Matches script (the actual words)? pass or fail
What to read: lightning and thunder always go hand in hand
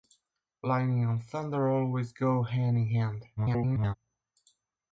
fail